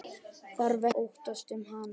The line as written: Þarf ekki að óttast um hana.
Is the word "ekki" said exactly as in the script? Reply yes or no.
no